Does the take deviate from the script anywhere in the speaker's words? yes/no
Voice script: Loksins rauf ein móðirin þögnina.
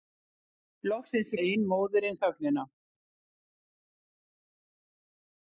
yes